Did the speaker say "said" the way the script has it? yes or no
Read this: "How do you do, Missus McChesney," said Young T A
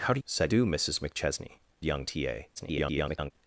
no